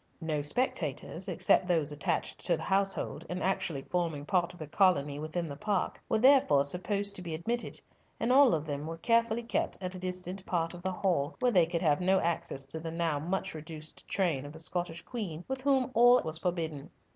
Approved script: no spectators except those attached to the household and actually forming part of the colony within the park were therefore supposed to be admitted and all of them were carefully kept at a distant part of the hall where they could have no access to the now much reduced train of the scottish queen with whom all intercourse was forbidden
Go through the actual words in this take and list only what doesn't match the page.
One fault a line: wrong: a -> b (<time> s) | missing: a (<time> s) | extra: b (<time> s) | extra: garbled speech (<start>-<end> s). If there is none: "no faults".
missing: intercourse (16.2 s)